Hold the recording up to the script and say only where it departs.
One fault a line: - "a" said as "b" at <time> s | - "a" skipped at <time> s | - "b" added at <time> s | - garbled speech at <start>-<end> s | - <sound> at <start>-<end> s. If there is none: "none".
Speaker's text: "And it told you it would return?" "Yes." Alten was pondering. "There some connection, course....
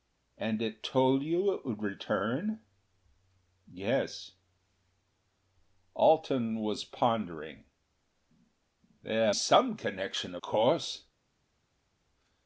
none